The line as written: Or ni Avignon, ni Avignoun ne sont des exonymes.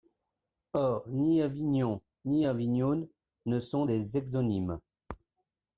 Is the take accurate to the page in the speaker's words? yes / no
yes